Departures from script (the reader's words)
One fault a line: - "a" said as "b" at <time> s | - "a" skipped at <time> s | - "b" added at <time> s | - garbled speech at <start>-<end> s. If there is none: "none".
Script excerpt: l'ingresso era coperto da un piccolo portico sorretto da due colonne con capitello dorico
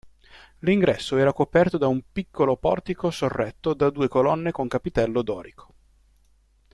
none